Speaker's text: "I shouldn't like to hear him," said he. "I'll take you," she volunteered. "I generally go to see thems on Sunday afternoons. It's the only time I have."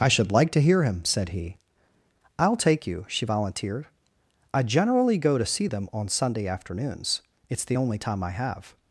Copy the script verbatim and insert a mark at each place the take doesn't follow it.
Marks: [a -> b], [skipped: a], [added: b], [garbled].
"I [shouldn't -> should] like to hear him," said he. "I'll take you," she volunteered. "I generally go to see [thems -> them] on Sunday afternoons. It's the only time I have."